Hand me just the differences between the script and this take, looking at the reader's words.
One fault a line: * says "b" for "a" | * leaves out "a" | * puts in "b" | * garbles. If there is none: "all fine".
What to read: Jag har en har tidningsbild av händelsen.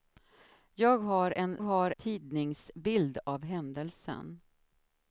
all fine